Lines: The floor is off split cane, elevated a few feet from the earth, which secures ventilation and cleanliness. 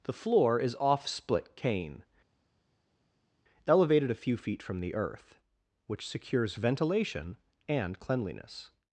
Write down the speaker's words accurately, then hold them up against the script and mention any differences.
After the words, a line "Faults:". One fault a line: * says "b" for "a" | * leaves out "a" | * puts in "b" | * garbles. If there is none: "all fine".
The floor is off split cane, elevated a few feet from the earth, which secures ventilation and cleanliness.
Faults:
all fine